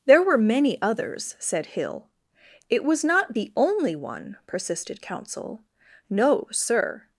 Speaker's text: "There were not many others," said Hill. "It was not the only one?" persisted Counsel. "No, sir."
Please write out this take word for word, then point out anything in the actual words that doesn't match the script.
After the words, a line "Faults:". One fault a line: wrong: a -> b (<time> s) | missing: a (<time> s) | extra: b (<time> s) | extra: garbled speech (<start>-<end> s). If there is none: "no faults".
"There were many others," said Hill. "It was not the only one?" persisted Counsel. "No, sir."
Faults:
missing: not (0.4 s)